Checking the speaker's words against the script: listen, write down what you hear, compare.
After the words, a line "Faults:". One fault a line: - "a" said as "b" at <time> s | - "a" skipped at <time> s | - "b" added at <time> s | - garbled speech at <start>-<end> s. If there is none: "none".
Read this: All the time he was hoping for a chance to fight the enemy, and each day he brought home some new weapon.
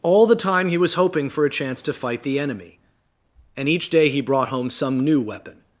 All the time he was hoping for a chance to fight the enemy, and each day he brought home some new weapon.
Faults:
none